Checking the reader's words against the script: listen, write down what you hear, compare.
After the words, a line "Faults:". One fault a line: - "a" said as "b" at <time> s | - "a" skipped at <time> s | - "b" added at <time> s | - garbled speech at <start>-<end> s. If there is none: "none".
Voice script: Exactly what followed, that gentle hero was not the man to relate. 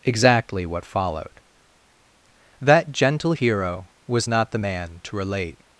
Exactly what followed, that gentle hero was not the man to relate.
Faults:
none